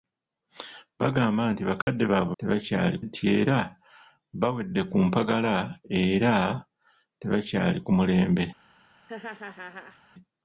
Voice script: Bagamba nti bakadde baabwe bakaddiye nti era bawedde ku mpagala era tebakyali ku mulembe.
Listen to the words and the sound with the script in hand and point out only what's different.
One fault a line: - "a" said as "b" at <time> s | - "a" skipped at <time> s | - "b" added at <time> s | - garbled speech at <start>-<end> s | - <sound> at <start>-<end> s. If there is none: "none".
- dropout at 1.8-1.9 s
- "bakaddiye" said as "tebakyali" at 2.4 s
- laugh at 9.1-10.0 s